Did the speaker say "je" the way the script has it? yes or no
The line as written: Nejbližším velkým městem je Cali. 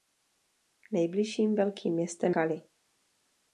no